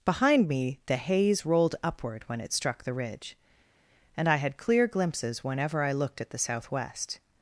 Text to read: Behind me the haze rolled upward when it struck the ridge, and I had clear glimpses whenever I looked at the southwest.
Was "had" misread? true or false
false